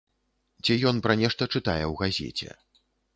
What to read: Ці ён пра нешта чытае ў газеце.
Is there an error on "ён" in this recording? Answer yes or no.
no